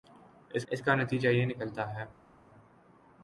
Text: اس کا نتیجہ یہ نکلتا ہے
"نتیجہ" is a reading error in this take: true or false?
false